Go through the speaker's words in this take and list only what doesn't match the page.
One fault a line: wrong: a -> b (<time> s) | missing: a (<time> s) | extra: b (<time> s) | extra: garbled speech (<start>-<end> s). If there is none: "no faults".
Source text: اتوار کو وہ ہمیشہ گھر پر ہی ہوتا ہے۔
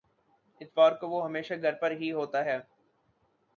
no faults